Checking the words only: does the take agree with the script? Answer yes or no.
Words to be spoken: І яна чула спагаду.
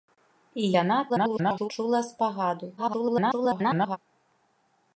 no